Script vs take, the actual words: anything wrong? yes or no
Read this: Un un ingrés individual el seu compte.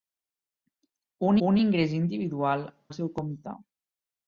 no